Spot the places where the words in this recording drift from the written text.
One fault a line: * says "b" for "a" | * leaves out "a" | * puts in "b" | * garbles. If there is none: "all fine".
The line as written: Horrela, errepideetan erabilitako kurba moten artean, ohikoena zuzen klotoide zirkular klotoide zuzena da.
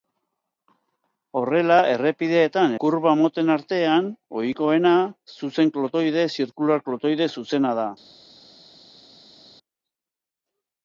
* leaves out "erabilitako"